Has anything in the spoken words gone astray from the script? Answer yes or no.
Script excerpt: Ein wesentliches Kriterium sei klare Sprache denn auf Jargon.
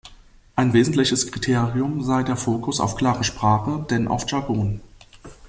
yes